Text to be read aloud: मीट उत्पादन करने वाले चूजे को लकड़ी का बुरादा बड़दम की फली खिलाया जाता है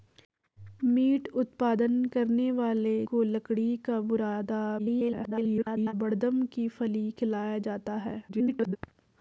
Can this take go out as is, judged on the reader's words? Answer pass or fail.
fail